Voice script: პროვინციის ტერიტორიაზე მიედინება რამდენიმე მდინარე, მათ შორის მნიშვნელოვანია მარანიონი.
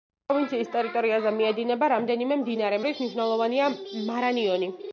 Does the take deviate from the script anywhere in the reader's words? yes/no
yes